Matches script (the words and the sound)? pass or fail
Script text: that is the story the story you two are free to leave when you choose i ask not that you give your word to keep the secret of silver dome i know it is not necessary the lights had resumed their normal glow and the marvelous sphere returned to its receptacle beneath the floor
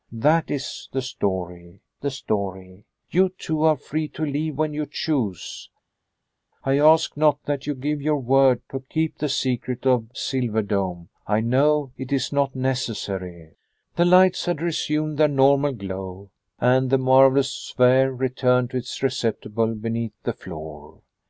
pass